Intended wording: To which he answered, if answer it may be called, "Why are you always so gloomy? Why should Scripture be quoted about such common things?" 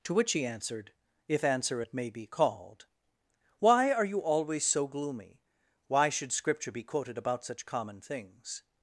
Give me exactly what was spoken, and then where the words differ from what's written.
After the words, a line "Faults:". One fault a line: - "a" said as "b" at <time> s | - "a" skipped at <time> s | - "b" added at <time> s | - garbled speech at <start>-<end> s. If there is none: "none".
To which he answered, if answer it may be called, "Why are you always so gloomy? Why should Scripture be quoted about such common things?"
Faults:
none